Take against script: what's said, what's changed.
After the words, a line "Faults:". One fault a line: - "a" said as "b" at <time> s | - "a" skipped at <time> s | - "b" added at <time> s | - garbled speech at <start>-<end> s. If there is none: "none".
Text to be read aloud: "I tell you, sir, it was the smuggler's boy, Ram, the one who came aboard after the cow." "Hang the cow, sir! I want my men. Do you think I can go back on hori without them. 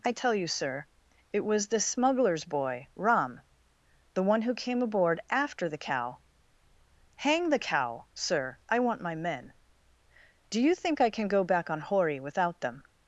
"I tell you, sir, it was the smuggler's boy, Ram, the one who came aboard after the cow." "Hang the cow, sir! I want my men. Do you think I can go back on hori without them.
Faults:
none